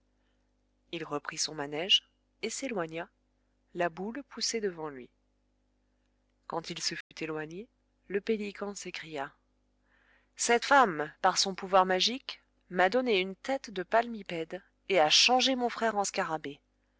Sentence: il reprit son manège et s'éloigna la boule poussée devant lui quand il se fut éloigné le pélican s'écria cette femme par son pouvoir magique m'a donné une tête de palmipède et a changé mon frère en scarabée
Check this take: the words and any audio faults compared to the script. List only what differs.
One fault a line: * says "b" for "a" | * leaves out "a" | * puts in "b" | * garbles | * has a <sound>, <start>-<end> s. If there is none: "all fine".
* has a dropout, 7.0-7.1 s